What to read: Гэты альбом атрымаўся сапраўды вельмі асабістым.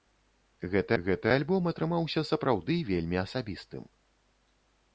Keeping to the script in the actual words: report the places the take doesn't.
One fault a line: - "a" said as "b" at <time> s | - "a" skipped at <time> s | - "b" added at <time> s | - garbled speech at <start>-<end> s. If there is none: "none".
- "гэты" added at 1.0 s